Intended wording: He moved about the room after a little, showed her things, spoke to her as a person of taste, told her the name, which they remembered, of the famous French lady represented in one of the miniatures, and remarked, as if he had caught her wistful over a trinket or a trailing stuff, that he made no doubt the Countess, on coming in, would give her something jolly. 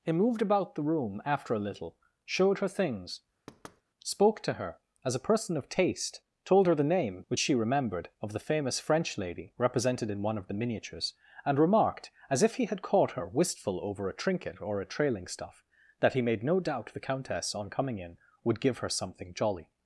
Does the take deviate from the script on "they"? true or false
true